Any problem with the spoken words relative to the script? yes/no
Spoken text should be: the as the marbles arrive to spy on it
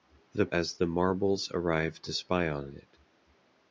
no